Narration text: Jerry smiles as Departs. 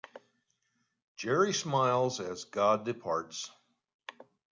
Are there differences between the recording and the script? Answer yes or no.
yes